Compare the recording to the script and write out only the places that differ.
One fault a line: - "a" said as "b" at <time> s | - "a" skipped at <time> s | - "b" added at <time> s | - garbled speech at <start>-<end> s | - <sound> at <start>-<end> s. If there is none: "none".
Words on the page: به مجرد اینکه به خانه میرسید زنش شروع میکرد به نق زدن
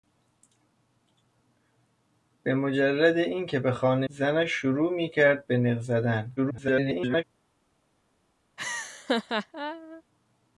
- "میرسید" skipped at 4.1 s
- garbled speech at 6.4-7.2 s
- laugh at 8.6-10.0 s